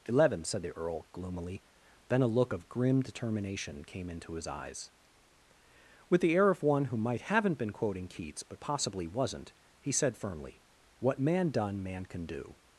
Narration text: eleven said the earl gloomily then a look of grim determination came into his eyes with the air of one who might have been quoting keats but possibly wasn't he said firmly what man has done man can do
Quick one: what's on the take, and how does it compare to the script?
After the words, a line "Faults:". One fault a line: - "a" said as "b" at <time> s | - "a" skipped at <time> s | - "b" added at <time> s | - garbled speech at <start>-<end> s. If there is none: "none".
eleven said the earl gloomily then a look of grim determination came into his eyes with the air of one who might haven't been quoting keats but possibly wasn't he said firmly what man done man can do
Faults:
- "have" said as "haven't" at 7.2 s
- "has" skipped at 11.5 s